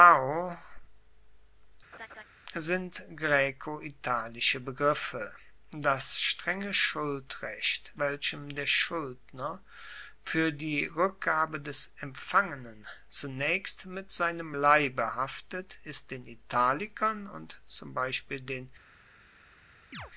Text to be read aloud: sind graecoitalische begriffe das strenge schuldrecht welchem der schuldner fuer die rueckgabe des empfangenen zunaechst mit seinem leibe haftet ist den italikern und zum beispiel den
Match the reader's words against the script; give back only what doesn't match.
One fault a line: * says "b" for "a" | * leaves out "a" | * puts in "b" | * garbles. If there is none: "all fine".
all fine